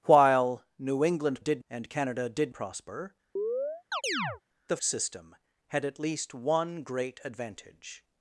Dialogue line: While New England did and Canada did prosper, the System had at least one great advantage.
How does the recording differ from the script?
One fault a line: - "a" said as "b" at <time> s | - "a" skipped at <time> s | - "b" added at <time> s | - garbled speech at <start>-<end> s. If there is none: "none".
none